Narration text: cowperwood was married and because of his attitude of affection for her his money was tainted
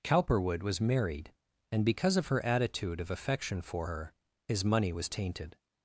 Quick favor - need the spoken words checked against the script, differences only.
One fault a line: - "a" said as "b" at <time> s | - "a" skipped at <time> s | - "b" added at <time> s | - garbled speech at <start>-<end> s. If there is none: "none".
- "his" said as "her" at 2.3 s